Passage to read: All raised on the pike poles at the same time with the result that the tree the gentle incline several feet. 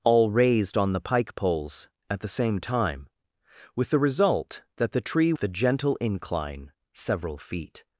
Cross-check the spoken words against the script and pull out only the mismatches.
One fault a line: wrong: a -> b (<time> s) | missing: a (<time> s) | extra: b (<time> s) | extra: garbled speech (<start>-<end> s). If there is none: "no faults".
no faults